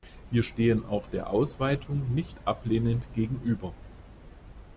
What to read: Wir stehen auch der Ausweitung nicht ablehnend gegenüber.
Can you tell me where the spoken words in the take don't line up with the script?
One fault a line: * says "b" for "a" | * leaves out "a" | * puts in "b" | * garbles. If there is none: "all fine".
all fine